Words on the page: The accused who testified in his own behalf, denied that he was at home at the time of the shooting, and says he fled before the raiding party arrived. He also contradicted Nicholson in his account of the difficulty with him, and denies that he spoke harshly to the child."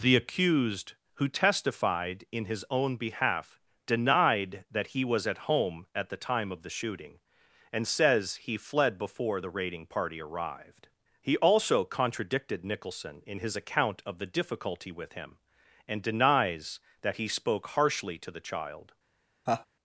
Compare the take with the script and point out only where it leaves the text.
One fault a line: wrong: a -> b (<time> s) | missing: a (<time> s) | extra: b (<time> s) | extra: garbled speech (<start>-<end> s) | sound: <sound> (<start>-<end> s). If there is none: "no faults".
sound: laugh (19.5-19.7 s)